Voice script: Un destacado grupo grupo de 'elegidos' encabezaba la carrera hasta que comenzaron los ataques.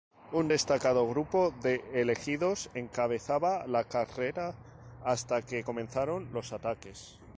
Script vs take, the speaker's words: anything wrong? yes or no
yes